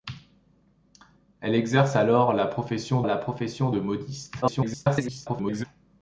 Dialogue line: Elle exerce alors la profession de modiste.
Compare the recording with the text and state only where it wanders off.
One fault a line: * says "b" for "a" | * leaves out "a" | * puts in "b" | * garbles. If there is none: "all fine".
* puts in "la profession"
* garbles